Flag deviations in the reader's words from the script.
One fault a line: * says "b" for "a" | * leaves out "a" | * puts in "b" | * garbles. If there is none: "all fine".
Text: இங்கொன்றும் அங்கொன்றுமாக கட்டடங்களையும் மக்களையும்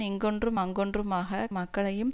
* leaves out "கட்டடங்களையும்"